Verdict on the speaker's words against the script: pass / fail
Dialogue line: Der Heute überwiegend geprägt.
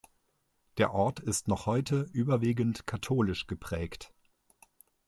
fail